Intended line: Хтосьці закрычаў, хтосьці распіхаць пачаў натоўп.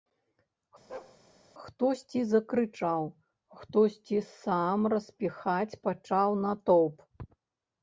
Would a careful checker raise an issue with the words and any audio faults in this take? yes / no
yes